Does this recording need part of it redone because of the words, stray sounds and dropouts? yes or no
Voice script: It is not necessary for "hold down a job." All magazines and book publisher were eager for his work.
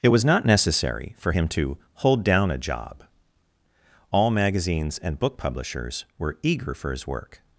yes